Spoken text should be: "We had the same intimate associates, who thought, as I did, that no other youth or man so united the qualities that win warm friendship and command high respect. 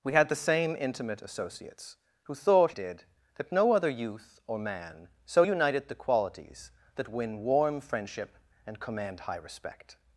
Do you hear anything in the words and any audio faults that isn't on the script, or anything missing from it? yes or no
yes